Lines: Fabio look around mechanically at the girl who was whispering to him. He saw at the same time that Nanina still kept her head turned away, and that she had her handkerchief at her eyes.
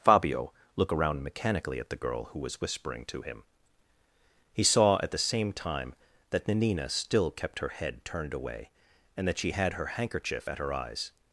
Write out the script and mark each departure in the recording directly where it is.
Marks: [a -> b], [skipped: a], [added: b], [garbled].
Fabio look around mechanically at the girl who was whispering to him. He saw at the same time that Nanina still kept her head turned away, and that she had her handkerchief at her eyes.